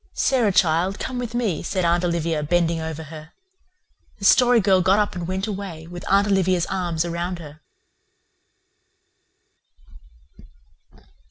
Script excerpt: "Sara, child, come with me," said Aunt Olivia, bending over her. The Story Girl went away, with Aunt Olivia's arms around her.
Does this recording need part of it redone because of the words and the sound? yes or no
yes